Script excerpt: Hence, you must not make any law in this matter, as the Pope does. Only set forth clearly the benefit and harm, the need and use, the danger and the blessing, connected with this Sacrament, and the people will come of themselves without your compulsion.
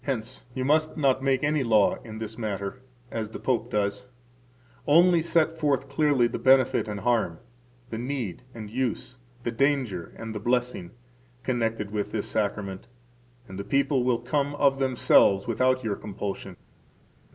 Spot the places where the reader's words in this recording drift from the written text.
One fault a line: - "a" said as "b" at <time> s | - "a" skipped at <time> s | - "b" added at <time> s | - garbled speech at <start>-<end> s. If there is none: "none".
none